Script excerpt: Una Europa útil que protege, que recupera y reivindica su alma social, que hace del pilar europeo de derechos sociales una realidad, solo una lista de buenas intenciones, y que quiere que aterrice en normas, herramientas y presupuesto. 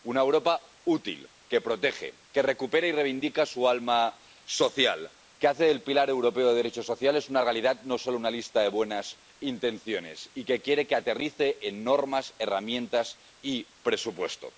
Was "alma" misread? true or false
false